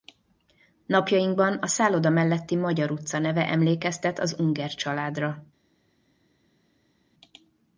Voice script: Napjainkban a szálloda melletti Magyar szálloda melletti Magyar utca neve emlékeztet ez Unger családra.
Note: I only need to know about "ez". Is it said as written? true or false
false